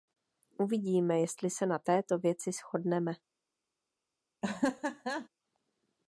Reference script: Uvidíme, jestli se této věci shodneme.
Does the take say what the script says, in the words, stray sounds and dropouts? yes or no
no